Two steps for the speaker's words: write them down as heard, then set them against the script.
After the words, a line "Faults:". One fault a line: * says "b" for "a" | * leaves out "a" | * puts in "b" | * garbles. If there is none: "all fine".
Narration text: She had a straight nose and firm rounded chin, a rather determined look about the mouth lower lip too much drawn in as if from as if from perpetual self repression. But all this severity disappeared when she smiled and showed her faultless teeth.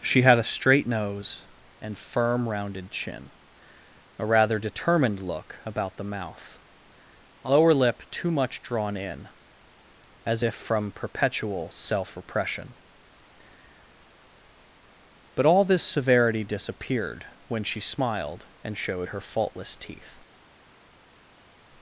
She had a straight nose and firm rounded chin, a rather determined look about the mouth lower lip too much drawn in as if from perpetual self repression. But all this severity disappeared when she smiled and showed her faultless teeth.
Faults:
* leaves out "as if from"